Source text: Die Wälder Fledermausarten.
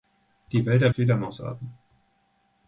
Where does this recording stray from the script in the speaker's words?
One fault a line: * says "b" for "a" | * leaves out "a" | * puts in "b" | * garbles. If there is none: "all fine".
all fine